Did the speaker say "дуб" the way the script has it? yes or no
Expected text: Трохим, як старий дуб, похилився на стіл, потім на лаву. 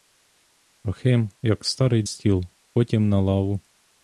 no